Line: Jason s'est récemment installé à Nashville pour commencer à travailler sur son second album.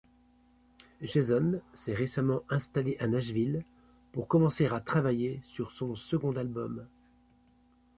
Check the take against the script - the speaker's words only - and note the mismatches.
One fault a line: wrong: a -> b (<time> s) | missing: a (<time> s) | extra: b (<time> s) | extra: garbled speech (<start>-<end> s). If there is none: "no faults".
no faults